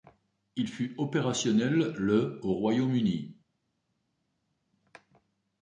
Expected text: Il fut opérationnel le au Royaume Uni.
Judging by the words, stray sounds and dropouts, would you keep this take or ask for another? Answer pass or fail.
pass